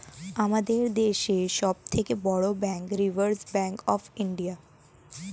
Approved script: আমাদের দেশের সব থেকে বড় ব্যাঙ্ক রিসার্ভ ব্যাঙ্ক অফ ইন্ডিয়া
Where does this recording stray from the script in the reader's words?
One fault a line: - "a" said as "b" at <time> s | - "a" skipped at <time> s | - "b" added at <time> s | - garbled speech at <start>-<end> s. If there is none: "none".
none